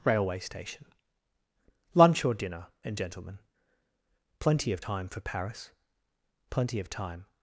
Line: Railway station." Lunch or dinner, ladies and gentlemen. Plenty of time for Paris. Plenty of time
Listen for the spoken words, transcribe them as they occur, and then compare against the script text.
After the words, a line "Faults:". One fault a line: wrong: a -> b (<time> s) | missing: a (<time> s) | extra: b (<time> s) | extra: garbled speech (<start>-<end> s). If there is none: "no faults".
Railway station." Lunch or dinner, and gentlemen. Plenty of time for Paris. Plenty of time
Faults:
missing: ladies (2.7 s)